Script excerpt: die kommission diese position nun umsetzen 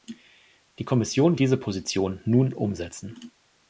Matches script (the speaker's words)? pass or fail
pass